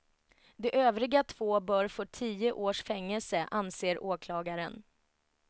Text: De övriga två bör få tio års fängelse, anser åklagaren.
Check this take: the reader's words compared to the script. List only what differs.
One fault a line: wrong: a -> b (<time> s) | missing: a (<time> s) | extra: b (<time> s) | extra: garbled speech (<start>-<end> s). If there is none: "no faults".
no faults